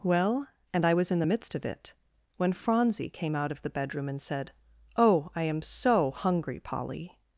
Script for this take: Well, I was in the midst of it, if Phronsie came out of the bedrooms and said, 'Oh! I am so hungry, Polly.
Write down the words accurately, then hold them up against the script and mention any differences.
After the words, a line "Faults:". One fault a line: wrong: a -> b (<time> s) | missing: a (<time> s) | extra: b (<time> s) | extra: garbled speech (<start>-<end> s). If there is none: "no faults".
Well, and I was in the midst of it, when Phronsie came out of the bedroom and said, 'Oh! I am so hungry, Polly.
Faults:
extra: and (0.7 s)
wrong: if -> when (2.4 s)
wrong: bedrooms -> bedroom (3.7 s)